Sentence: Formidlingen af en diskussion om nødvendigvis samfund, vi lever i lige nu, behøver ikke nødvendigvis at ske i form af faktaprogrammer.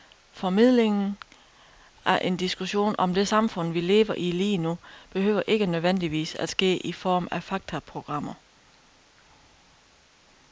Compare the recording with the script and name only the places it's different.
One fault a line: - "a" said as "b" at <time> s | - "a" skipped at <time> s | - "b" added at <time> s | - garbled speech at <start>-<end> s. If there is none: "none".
- "nødvendigvis" said as "det" at 3.1 s